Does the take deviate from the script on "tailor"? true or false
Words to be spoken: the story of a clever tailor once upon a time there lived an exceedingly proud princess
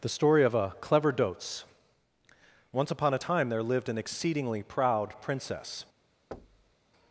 true